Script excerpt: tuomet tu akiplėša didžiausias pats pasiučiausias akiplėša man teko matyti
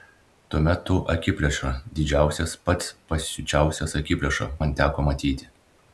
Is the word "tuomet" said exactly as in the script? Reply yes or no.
yes